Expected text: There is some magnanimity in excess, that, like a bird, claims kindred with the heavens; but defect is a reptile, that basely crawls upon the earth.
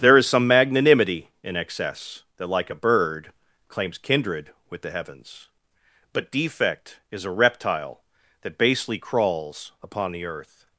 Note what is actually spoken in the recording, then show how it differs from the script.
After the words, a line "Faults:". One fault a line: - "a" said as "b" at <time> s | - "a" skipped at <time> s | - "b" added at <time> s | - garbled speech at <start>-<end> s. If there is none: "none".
There is some magnanimity in excess, that, like a bird, claims kindred with the heavens; but defect is a reptile, that basely crawls upon the earth.
Faults:
none